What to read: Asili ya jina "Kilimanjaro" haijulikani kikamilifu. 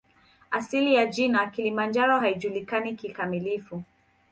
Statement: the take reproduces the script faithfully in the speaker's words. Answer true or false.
true